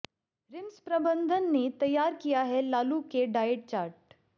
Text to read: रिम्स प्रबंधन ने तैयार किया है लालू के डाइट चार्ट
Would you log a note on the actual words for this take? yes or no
no